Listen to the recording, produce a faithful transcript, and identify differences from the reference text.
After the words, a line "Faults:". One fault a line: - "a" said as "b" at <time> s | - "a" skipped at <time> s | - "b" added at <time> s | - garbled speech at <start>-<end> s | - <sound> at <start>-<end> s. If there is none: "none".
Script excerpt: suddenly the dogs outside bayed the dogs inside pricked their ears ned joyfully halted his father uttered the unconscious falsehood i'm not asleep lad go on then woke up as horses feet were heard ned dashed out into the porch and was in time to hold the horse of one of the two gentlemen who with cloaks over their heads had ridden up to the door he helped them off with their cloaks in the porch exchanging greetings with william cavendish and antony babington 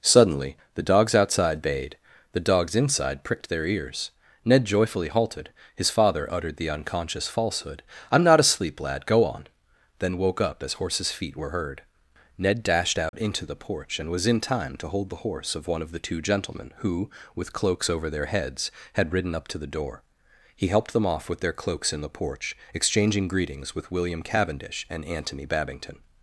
suddenly the dogs outside bayed the dogs inside pricked their ears ned joyfully halted his father uttered the unconscious falsehood i'm not asleep lad go on then woke up as horses feet were heard ned dashed out into the porch and was in time to hold the horse of one of the two gentlemen who with cloaks over their heads had ridden up to the door he helped them off with their cloaks in the porch exchanging greetings with william cavendish and antony babington
Faults:
- dropout at 13.1-13.1 s